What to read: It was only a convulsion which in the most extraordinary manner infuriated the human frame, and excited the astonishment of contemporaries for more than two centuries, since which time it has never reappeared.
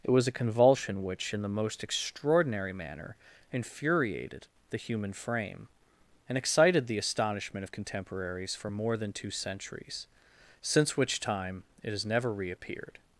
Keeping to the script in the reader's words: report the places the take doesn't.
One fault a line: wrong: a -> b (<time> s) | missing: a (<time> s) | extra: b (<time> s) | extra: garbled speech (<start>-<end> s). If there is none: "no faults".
missing: only (0.3 s)